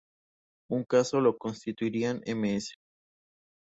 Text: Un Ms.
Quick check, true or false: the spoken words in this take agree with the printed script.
false